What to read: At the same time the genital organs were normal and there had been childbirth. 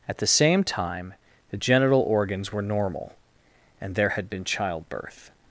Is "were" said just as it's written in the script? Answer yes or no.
yes